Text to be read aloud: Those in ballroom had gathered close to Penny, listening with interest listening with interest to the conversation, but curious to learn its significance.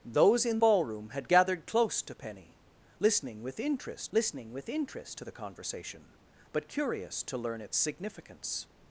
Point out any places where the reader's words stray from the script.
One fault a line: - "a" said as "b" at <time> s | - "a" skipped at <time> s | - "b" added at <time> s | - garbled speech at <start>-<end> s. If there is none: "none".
none